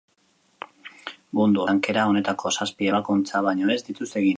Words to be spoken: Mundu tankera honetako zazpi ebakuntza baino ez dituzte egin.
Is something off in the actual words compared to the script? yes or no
no